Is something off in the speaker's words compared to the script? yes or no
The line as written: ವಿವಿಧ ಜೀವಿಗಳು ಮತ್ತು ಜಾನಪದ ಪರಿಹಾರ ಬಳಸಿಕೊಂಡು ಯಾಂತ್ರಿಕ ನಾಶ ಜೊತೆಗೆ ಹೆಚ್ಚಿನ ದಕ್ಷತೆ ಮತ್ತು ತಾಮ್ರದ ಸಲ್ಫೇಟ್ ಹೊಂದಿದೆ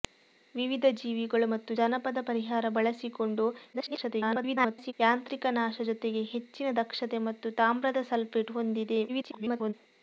yes